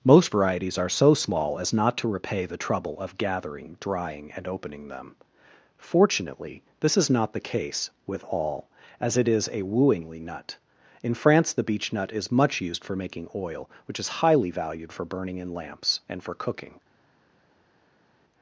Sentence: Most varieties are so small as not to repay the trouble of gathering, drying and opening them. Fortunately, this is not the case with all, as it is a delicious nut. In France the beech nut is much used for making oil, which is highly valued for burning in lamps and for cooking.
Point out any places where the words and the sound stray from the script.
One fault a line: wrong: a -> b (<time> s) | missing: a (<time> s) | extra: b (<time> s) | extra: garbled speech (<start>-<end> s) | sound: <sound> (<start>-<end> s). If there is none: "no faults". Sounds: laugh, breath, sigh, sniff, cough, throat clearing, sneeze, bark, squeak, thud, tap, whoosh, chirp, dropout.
wrong: delicious -> wooingly (9.6 s)